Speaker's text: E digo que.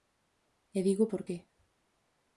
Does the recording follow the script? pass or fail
fail